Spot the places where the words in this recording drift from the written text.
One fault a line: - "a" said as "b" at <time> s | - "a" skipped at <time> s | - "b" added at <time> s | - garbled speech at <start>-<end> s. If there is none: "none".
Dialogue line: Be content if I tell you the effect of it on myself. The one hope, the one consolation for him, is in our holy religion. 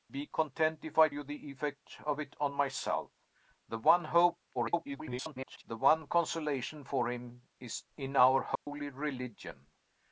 - "tell" skipped at 1.1 s
- garbled speech at 4.5-5.6 s